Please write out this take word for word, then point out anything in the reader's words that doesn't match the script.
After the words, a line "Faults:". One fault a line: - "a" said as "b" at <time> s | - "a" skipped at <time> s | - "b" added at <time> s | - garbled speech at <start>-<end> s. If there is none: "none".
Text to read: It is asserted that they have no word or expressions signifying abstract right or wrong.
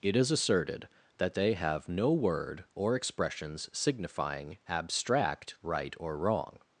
It is asserted that they have no word or expressions signifying abstract right or wrong.
Faults:
none